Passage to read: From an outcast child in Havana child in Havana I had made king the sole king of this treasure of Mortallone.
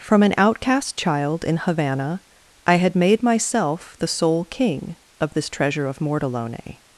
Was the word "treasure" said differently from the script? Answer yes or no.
no